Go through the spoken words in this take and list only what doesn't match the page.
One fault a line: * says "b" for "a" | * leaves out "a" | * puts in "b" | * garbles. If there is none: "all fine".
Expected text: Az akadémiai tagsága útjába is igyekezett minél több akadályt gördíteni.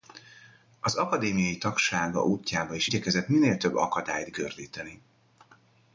all fine